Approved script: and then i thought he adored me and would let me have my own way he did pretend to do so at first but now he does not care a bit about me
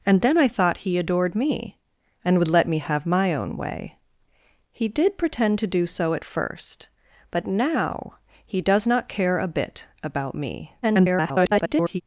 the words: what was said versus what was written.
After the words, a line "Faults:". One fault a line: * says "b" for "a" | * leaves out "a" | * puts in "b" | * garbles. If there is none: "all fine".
and then i thought he adored me and would let me have my own way he did pretend to do so at first but now he does not care a bit about me [garbled]
Faults:
* garbles